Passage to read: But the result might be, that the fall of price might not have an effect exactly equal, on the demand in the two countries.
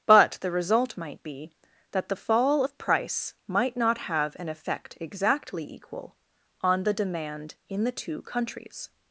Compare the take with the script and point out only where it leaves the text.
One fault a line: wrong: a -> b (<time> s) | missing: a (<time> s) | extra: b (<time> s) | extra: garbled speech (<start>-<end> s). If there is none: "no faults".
no faults